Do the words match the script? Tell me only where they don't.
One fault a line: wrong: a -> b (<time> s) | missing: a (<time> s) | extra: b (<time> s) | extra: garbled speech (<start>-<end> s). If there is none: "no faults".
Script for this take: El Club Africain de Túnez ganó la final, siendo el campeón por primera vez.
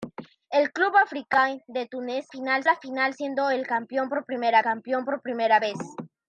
wrong: ganó -> final (2.3 s)
extra: campeón por primera (4.6 s)